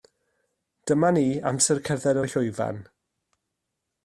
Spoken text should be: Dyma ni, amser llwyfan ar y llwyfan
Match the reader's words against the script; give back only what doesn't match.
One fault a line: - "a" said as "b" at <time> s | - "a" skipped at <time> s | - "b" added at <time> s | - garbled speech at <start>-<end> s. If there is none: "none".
- "llwyfan" said as "cerdded" at 1.9 s